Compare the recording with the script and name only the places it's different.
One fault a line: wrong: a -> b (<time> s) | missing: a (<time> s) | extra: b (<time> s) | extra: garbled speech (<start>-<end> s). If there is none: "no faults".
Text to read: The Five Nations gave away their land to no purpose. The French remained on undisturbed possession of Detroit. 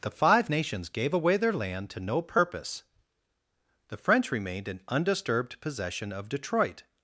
wrong: on -> in (4.7 s)